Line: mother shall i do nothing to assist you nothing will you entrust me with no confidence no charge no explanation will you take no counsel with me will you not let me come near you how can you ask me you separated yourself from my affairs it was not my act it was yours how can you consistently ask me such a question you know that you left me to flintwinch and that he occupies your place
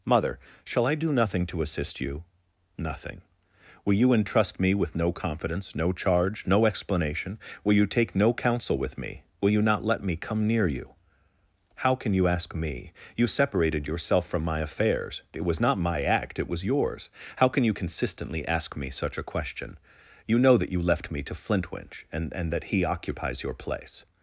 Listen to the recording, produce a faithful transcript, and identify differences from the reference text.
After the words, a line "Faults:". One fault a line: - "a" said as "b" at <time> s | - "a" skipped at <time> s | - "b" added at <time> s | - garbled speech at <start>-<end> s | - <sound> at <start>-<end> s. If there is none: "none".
mother shall i do nothing to assist you nothing will you entrust me with no confidence no charge no explanation will you take no counsel with me will you not let me come near you how can you ask me you separated yourself from my affairs it was not my act it was yours how can you consistently ask me such a question you know that you left me to flintwinch and and that he occupies your place
Faults:
- "and" added at 22.3 s